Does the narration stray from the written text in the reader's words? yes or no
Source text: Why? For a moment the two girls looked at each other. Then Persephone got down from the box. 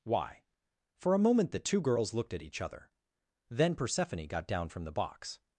no